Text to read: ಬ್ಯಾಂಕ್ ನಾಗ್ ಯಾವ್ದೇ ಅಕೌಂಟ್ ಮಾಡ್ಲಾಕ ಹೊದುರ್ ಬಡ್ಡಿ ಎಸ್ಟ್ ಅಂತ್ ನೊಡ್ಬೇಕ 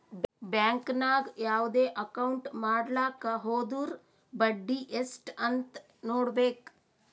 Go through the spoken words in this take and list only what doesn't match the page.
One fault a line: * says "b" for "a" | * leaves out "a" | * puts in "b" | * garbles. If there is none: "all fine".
all fine